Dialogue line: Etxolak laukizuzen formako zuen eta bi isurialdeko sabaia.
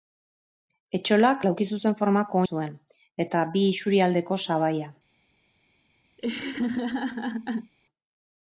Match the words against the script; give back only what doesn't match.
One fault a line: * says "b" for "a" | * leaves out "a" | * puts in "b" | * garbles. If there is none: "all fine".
all fine